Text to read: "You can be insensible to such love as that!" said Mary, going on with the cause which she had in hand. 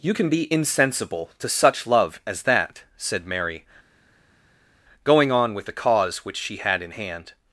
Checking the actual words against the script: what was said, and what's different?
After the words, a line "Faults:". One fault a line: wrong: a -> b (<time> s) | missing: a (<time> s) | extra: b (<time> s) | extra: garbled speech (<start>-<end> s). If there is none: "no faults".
"You can be insensible to such love as that!" said Mary, going on with the cause which she had in hand.
Faults:
no faults